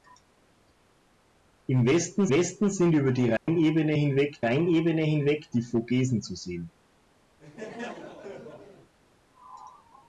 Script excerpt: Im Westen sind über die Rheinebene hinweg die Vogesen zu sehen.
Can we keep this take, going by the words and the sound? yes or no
no